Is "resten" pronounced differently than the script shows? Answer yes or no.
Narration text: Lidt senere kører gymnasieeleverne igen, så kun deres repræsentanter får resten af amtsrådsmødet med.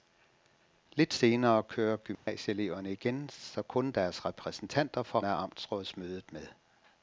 yes